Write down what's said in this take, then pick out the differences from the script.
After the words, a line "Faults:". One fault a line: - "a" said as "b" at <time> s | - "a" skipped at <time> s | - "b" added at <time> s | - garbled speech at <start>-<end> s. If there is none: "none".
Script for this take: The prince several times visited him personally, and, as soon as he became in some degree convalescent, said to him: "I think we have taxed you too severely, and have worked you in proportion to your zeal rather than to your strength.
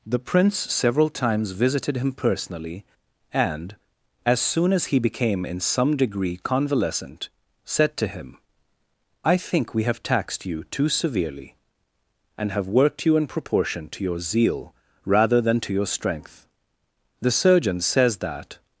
The prince several times visited him personally, and, as soon as he became in some degree convalescent, said to him: "I think we have taxed you too severely, and have worked you in proportion to your zeal rather than to your strength. The surgeon says that
Faults:
- "The surgeon says that" added at 17.2 s